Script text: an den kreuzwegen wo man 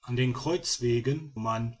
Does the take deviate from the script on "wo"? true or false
true